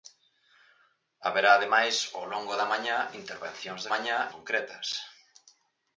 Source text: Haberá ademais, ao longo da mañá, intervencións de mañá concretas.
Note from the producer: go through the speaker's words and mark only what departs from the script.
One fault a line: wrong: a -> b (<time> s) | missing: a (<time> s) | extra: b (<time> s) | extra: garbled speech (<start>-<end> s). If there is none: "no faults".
no faults